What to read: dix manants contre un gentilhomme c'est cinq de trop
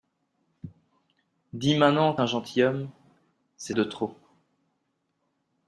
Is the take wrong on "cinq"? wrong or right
wrong